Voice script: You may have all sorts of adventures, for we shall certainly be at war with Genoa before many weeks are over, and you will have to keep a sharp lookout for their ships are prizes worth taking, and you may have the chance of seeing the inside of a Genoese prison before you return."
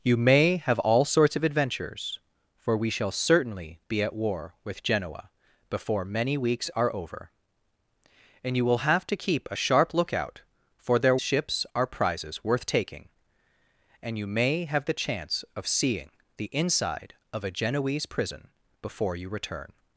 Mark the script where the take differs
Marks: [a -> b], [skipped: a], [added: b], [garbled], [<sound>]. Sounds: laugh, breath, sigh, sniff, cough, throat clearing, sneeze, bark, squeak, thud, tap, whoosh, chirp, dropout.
You may have all sorts of adventures, for we shall certainly be at war with Genoa before many weeks are over, and you will have to keep a sharp lookout for their ships are prizes worth taking, and you may have the chance of seeing the inside of a Genoese prison before you return."